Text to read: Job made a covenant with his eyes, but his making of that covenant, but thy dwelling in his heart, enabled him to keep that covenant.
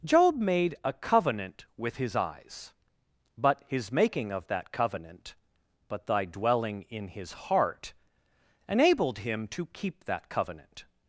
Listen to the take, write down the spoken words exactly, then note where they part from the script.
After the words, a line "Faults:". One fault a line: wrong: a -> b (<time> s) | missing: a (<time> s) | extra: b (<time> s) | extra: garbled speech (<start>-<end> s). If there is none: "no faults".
Job made a covenant with his eyes, but his making of that covenant, but thy dwelling in his heart, enabled him to keep that covenant.
Faults:
no faults